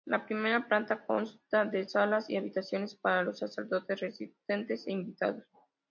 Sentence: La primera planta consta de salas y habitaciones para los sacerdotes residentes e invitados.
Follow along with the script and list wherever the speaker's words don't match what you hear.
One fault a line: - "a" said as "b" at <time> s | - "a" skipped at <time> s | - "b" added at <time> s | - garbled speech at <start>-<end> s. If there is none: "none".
none